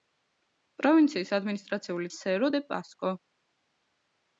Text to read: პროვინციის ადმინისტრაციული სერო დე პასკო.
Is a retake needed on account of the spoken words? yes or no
no